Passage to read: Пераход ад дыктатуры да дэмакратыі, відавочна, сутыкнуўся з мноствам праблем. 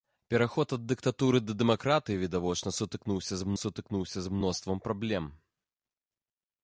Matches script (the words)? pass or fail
fail